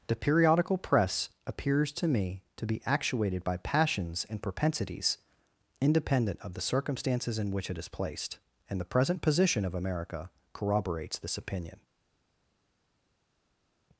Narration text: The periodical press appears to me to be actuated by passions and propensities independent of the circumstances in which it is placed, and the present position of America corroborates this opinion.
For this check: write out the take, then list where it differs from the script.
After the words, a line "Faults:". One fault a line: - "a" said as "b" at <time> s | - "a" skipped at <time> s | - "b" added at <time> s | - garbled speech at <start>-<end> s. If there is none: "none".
The periodical press appears to me to be actuated by passions and propensities independent of the circumstances in which it is placed, and the present position of America corroborates this opinion.
Faults:
none